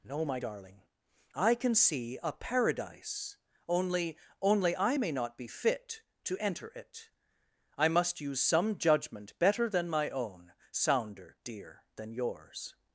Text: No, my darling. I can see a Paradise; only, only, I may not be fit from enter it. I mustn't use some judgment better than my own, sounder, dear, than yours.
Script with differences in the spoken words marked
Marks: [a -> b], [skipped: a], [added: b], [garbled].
No, my darling. I can see a Paradise; only, only, I may not be fit [from -> to] enter it. I [mustn't -> must] use some judgment better than my own, sounder, dear, than yours.